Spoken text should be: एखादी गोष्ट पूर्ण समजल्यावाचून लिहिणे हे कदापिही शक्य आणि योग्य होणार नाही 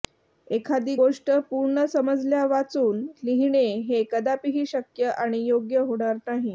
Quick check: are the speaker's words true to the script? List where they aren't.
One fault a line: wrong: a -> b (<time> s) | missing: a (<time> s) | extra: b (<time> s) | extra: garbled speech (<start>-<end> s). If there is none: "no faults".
no faults